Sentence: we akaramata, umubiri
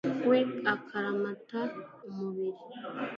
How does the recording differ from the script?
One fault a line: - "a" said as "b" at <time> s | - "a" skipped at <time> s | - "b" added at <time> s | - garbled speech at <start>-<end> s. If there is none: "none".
none